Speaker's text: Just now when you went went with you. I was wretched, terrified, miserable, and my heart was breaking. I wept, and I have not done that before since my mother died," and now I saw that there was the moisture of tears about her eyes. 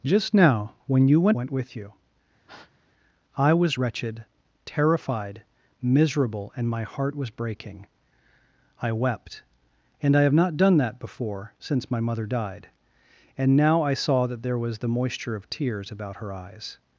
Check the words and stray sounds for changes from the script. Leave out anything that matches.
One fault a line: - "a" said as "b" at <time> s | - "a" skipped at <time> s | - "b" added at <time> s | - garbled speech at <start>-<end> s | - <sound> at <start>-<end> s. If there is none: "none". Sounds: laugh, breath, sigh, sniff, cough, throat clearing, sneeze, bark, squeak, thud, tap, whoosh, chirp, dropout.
- breath at 2.5-2.8 s